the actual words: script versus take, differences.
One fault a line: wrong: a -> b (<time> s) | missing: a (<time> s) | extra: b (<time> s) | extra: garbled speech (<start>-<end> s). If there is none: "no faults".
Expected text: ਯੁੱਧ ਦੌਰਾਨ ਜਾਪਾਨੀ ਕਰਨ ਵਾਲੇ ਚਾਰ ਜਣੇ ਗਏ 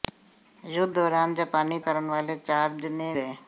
no faults